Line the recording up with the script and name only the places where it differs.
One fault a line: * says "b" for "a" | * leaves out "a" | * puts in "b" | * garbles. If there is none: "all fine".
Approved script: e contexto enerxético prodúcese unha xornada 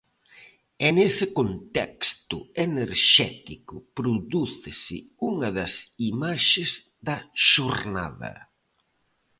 * puts in "nese"
* puts in "das imaxes da"